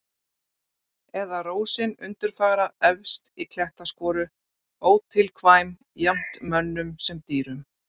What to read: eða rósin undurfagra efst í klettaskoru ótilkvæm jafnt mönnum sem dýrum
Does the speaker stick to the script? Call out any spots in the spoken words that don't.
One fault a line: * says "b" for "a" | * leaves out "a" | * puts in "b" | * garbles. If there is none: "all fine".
all fine